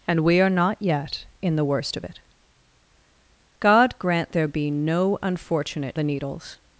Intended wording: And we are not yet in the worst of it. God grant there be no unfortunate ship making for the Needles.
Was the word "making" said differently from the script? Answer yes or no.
yes